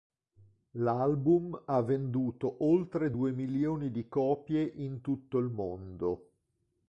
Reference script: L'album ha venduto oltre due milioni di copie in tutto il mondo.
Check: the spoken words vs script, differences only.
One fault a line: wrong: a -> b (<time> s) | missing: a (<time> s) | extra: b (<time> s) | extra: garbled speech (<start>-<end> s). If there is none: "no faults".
no faults